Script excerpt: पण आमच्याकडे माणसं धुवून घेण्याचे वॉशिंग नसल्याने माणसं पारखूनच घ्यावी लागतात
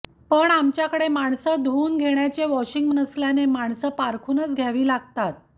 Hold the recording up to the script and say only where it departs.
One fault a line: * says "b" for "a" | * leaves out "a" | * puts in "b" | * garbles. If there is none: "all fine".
all fine